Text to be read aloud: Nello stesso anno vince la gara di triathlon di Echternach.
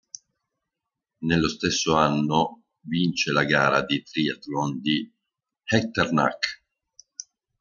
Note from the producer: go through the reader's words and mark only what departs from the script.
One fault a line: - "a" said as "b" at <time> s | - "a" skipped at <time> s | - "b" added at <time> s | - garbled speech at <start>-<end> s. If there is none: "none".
none